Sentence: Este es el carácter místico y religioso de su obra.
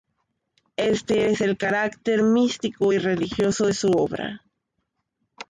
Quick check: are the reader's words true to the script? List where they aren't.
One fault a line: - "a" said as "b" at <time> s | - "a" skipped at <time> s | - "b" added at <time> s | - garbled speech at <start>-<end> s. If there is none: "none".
none